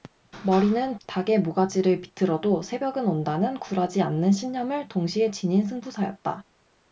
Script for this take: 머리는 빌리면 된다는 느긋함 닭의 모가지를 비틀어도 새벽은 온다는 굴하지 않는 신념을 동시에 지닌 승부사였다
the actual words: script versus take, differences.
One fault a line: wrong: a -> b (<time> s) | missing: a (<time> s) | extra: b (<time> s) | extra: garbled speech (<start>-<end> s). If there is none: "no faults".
missing: 빌리면 된다는 느긋함 (1.0 s)